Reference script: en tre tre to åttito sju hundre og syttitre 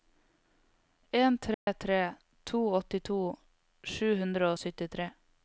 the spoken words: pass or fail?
pass